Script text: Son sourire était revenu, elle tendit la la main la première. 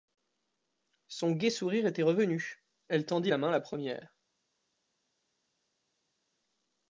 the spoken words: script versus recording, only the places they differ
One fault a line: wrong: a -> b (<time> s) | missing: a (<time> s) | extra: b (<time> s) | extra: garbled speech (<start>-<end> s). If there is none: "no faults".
extra: gai (1.3 s)
missing: la (3.4 s)